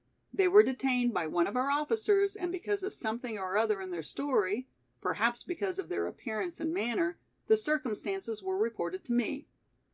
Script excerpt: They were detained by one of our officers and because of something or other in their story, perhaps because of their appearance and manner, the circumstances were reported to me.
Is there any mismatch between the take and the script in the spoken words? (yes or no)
no